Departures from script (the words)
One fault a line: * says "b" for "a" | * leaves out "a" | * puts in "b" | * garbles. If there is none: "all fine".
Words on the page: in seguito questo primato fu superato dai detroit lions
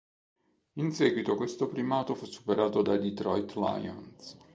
all fine